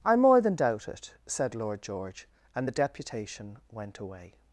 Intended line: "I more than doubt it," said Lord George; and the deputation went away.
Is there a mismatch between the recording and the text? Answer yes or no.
no